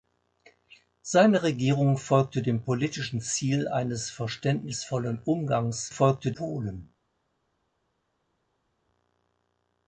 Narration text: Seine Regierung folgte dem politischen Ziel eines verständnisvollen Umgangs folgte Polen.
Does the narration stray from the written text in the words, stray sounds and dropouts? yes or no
no